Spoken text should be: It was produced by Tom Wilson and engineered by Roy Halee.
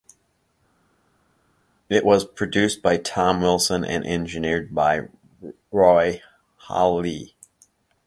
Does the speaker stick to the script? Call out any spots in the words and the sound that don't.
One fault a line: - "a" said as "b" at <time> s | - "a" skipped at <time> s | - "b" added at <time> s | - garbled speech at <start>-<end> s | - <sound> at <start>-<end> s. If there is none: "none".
none